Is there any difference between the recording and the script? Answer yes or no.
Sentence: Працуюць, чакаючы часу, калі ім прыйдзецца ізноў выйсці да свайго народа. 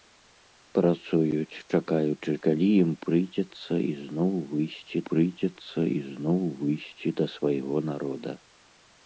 yes